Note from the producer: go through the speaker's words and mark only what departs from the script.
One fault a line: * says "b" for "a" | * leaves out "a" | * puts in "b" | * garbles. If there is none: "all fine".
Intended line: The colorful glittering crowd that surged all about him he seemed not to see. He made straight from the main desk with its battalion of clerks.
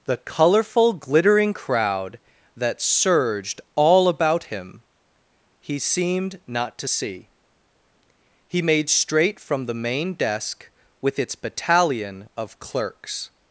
all fine